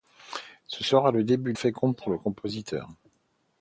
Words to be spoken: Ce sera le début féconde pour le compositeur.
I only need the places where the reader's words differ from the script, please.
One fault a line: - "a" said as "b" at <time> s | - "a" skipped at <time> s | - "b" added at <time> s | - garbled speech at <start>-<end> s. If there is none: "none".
none